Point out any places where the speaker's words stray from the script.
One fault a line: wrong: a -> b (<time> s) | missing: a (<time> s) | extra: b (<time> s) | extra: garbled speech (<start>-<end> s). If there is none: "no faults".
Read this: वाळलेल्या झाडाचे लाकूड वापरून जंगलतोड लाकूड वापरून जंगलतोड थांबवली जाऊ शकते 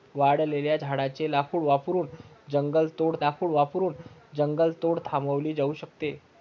no faults